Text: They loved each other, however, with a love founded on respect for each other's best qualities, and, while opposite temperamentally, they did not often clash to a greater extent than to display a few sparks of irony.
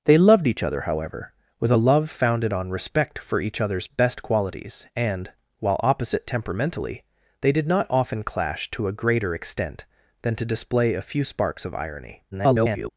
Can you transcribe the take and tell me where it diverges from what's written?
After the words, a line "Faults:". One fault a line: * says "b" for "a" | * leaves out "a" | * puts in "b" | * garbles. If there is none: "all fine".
They loved each other, however, with a love founded on respect for each other's best qualities, and, while opposite temperamentally, they did not often clash to a greater extent than to display a few sparks of irony. [garbled]
Faults:
* garbles